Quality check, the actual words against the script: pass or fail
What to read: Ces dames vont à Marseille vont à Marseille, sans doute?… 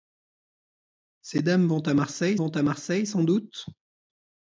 pass